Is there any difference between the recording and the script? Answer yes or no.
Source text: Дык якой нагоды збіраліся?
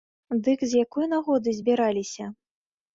yes